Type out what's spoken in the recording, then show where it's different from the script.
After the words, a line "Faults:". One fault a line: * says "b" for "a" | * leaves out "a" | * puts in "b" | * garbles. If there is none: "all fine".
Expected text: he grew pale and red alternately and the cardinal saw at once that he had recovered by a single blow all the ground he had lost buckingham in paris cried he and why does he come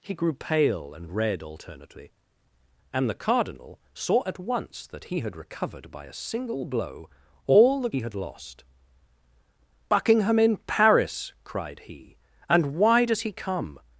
he grew pale and red alternately and the cardinal saw at once that he had recovered by a single blow all the he had lost buckingham in paris cried he and why does he come
Faults:
* leaves out "ground"